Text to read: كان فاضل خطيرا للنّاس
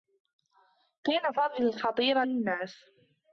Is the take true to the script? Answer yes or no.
yes